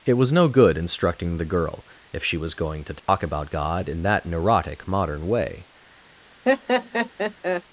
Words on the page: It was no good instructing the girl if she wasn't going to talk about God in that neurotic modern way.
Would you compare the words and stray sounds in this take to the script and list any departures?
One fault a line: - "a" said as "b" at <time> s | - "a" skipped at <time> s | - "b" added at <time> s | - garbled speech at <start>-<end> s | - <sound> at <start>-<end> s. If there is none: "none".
- "wasn't" said as "was" at 2.4 s
- dropout at 3.0-3.1 s
- laugh at 6.5-7.6 s